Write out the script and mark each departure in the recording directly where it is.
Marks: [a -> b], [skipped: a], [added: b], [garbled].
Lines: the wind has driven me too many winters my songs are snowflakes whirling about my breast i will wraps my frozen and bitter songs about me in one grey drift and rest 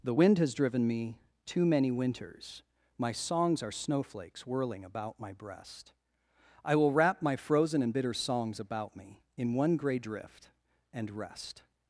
the wind has driven me too many winters my songs are snowflakes whirling about my breast i will [wraps -> wrap] my frozen and bitter songs about me in one grey drift and rest